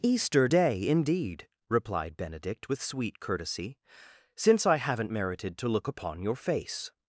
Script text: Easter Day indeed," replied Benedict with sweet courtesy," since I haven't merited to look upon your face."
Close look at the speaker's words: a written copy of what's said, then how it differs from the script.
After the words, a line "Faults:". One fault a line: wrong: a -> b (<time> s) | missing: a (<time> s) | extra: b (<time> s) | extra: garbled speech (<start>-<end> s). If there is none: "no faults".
Easter Day indeed," replied Benedict with sweet courtesy," since I haven't merited to look upon your face."
Faults:
no faults